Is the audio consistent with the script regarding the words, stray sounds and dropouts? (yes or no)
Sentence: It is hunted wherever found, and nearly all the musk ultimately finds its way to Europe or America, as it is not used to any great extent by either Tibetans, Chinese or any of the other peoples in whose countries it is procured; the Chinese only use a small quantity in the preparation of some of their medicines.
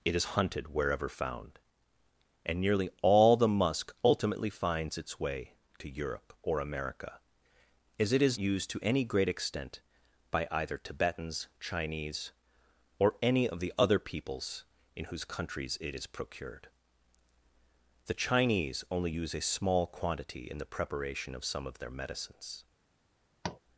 no